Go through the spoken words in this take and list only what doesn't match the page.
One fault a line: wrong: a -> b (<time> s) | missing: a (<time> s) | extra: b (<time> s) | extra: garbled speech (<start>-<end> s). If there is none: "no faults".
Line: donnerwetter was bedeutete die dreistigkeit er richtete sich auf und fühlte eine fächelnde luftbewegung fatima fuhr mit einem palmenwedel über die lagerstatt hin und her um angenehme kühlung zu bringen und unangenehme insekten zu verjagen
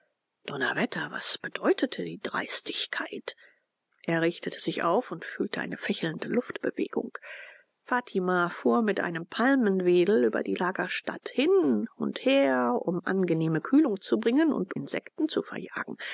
missing: unangenehme (14.7 s)